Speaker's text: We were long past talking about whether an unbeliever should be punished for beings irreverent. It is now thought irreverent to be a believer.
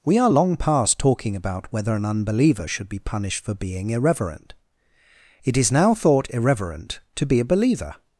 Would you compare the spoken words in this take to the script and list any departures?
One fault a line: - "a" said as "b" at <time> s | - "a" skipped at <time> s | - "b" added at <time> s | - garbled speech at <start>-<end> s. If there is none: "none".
- "were" said as "are" at 0.2 s
- "beings" said as "being" at 3.5 s